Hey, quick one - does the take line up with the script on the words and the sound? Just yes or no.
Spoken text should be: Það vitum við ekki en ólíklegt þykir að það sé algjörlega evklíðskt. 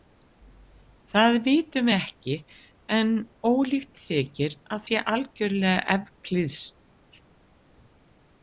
no